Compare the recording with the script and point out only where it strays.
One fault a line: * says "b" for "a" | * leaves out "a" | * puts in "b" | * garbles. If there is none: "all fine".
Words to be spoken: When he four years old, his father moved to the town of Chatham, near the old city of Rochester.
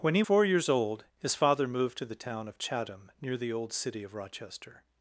all fine